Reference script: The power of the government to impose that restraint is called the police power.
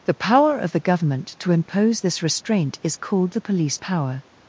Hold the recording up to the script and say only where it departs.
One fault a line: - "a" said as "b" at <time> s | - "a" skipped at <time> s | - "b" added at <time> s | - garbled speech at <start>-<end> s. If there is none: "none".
- "that" said as "this" at 2.0 s